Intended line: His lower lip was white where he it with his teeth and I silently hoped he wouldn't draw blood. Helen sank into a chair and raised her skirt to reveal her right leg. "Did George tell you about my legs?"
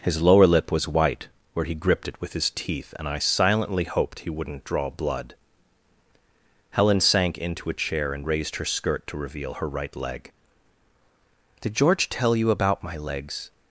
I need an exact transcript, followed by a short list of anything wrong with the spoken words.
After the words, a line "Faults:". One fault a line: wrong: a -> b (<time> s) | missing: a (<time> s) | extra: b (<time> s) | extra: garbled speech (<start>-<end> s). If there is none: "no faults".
His lower lip was white where he gripped it with his teeth and I silently hoped he wouldn't draw blood. Helen sank into a chair and raised her skirt to reveal her right leg. "Did George tell you about my legs?"
Faults:
extra: gripped (1.8 s)